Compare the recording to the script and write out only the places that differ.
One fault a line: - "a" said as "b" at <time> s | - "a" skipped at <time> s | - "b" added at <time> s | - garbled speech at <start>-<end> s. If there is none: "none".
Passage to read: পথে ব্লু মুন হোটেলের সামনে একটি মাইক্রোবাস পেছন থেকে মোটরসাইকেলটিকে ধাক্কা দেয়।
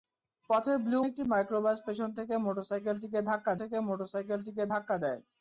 - "মুন হোটেলের সামনে একটি মাইক্রোবাস পেছন" said as "একটি মাইক্রোবাস পেছন থেকে মোটরসাইকেলটিকে ধাক্কা" at 1.0 s